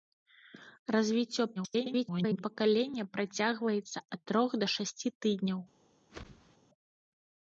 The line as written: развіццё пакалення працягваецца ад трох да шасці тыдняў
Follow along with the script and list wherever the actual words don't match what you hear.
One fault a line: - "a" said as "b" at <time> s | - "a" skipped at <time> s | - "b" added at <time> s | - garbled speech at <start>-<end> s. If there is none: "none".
- garbled speech at 1.6-2.4 s